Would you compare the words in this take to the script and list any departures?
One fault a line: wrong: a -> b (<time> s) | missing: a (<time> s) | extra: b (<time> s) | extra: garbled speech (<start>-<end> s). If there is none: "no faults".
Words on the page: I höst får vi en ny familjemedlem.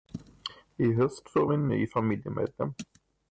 no faults